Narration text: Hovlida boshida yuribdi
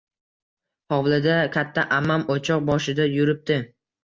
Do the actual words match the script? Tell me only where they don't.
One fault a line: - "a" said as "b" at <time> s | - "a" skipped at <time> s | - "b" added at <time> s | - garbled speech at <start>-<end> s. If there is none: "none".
- "katta ammam o`choq" added at 1.6 s